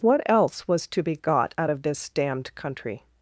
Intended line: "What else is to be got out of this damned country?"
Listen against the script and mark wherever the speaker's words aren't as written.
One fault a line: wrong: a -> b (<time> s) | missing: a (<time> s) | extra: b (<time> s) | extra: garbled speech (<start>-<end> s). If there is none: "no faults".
wrong: is -> was (0.7 s)